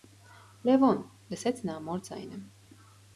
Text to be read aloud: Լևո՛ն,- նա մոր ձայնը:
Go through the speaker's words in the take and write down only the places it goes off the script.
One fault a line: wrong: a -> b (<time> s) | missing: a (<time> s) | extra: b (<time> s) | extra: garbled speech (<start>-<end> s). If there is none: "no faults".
extra: լսեց (1.3 s)